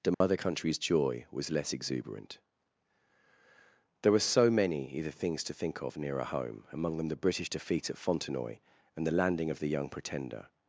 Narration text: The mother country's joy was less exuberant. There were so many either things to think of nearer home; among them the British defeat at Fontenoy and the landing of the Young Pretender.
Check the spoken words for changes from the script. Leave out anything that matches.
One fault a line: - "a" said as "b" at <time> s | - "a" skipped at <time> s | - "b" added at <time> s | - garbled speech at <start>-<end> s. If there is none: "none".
none